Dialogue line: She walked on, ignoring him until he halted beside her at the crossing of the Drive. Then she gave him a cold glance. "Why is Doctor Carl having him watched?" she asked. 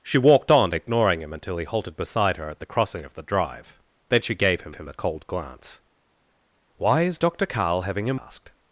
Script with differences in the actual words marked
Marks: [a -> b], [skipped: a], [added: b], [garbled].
She walked on, ignoring him until he halted beside her at the crossing of the Drive. Then she gave him [added: him] a cold glance. "Why is Doctor Carl having him [skipped: watched?" she] asked.